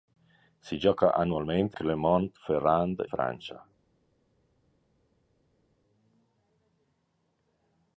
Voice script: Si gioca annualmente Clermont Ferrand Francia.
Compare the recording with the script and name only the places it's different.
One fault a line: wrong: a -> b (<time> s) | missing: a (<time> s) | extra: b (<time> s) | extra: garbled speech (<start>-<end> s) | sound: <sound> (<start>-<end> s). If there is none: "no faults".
no faults